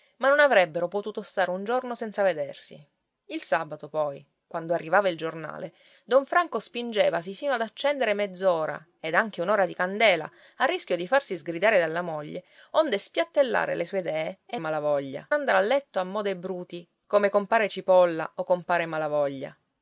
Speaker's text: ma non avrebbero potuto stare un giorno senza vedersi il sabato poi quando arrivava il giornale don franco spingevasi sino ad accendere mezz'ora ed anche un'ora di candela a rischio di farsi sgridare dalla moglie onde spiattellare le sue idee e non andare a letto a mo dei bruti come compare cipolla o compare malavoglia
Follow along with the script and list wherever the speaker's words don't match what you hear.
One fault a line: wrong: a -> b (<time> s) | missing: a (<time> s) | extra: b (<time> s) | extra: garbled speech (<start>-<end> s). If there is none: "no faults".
wrong: non -> malavoglia (14.6 s)